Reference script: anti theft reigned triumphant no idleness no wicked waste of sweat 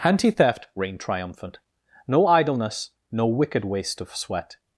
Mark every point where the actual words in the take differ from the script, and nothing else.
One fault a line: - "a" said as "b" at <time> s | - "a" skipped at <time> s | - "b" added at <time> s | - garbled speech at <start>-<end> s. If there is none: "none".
none